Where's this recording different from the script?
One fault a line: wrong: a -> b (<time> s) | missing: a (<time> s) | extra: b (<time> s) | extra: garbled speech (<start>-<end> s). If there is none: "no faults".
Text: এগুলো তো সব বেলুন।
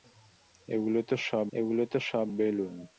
extra: এগুলো তো সব (1.5 s)